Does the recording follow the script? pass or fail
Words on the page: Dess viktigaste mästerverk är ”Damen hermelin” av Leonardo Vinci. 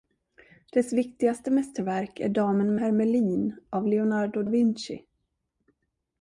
pass